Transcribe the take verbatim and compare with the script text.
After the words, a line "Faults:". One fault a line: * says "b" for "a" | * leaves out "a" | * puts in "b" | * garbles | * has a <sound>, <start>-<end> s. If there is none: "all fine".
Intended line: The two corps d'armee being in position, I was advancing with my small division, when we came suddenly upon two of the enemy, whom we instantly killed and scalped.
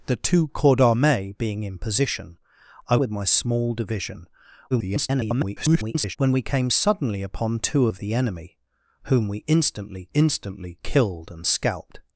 The two corps d'armee being in position, I with my small division, [garbled] when we came suddenly upon two of the enemy, whom we instantly instantly killed and scalped.
Faults:
* leaves out "was advancing"
* garbles
* puts in "instantly"